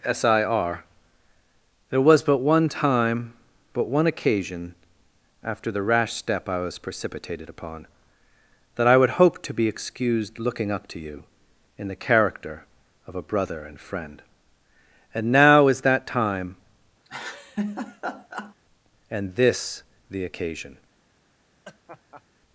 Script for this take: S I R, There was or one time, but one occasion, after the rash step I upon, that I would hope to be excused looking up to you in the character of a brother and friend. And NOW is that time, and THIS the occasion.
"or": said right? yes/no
no